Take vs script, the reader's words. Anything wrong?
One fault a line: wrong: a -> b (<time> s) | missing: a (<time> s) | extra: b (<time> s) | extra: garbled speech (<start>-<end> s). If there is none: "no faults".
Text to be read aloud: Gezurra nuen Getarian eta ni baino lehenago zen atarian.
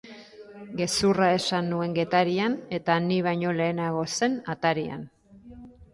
extra: esan (1.4 s)